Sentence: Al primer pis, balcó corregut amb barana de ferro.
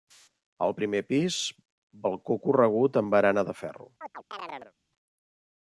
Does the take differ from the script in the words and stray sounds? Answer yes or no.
yes